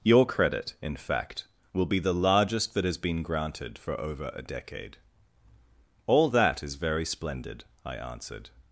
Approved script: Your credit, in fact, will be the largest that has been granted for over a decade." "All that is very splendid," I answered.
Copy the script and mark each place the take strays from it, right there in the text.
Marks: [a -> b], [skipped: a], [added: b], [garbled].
Your credit, in fact, will be the largest that has been granted for over a decade." "All that is very splendid," I answered.